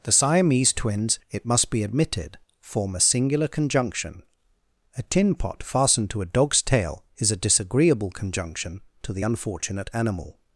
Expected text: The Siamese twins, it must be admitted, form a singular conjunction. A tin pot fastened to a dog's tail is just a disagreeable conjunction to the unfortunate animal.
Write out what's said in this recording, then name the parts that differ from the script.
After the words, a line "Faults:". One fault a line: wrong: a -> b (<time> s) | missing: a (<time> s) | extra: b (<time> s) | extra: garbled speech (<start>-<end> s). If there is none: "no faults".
The Siamese twins, it must be admitted, form a singular conjunction. A tin pot fastened to a dog's tail is a disagreeable conjunction to the unfortunate animal.
Faults:
missing: just (7.3 s)